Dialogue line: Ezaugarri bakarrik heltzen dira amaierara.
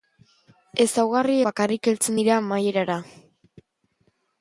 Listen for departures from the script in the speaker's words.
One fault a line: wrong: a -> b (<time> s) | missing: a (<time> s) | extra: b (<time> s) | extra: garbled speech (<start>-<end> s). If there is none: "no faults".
no faults